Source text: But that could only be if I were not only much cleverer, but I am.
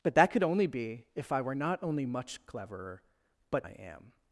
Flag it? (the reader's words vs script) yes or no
no